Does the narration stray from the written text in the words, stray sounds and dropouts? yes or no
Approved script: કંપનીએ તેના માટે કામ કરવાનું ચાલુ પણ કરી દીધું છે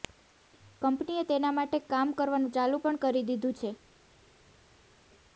no